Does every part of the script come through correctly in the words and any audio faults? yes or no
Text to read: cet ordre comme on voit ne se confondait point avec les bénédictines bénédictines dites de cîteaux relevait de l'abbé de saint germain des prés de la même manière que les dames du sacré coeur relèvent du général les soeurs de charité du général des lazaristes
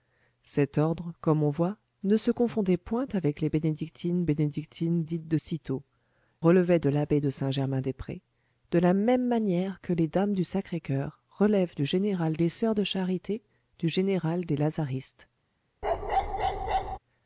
no